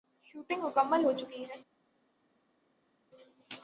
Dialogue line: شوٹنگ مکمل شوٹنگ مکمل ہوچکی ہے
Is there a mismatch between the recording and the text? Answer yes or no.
yes